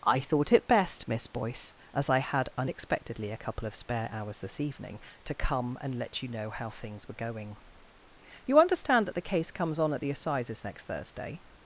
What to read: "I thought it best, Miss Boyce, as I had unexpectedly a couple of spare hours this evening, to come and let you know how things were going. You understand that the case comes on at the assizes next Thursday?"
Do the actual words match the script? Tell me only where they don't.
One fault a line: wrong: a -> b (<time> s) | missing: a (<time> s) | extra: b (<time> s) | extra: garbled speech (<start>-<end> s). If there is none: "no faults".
no faults